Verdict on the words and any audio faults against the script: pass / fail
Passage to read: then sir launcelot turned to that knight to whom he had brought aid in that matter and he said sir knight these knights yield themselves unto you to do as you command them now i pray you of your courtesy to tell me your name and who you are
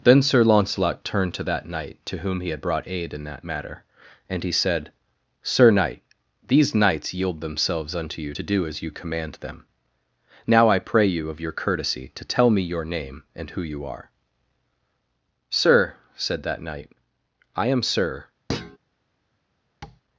fail